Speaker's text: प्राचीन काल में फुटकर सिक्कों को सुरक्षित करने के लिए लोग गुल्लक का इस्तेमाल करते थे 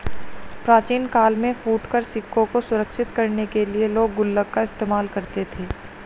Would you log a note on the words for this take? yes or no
no